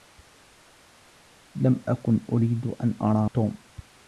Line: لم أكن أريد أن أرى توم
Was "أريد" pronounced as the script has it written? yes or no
yes